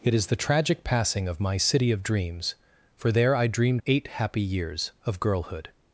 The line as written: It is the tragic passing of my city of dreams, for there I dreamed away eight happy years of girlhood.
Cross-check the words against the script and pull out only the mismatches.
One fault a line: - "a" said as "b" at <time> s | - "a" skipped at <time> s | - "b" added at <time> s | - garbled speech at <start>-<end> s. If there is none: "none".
- "away" skipped at 3.8 s